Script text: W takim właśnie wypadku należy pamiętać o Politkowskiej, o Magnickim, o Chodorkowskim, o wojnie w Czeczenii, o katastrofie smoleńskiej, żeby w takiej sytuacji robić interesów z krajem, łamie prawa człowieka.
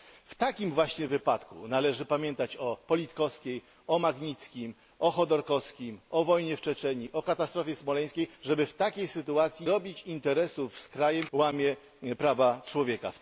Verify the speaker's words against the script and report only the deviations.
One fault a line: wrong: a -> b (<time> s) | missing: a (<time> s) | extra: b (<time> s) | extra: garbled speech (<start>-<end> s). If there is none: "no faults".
no faults